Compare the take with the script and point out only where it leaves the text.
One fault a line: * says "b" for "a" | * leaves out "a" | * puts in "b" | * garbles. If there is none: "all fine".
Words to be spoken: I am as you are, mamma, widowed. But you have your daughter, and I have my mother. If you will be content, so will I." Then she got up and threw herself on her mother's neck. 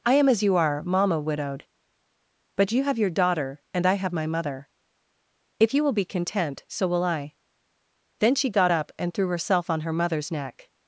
all fine